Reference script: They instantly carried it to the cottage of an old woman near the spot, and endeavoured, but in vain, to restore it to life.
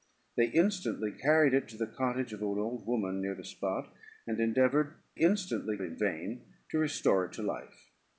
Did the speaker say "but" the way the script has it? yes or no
no